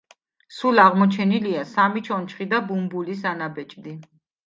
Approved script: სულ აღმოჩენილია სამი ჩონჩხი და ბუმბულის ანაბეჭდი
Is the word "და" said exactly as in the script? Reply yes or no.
yes